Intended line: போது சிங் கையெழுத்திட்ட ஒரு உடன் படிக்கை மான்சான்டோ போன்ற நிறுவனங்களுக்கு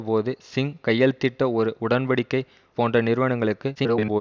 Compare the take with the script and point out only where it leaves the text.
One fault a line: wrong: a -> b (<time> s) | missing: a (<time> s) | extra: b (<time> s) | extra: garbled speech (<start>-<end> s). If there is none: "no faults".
missing: மான்சான்டோ (2.4 s)
extra: garbled speech (3.7-4.2 s)